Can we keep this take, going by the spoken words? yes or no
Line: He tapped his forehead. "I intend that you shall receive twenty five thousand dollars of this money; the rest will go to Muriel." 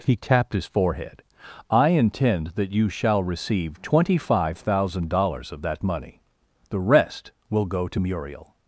no